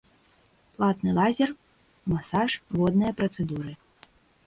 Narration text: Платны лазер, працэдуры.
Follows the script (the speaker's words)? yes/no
no